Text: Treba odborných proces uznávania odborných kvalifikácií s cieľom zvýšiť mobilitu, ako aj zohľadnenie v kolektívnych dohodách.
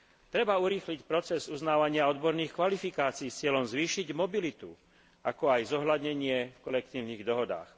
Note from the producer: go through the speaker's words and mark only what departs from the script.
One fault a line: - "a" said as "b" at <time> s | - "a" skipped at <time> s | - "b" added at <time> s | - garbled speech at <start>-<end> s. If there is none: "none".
- "odborných" said as "urýchliť" at 0.6 s